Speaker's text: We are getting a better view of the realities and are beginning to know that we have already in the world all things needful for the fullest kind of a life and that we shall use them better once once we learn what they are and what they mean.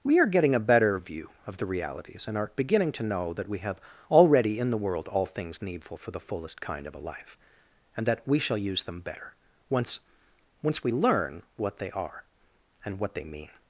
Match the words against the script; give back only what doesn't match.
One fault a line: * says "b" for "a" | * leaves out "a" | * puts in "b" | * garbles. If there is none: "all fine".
all fine